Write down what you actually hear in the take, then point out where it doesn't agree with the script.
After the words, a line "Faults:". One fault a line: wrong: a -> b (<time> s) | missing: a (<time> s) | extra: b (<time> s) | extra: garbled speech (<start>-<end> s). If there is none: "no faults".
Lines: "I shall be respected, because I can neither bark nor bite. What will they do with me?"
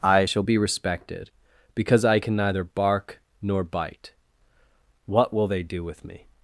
"I shall be respected, because I can neither bark nor bite. What will they do with me?"
Faults:
no faults